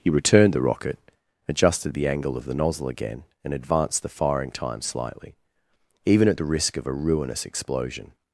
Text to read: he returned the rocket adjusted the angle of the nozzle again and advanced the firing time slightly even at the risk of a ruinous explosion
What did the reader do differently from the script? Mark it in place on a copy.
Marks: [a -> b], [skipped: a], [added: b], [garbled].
he returned the rocket adjusted the angle of the nozzle again and advanced the firing time slightly even at the risk of a ruinous explosion